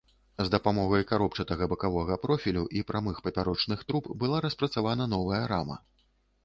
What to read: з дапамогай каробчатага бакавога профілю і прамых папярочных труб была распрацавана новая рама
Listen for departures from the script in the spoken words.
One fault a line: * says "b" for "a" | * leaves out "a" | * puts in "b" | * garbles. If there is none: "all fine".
all fine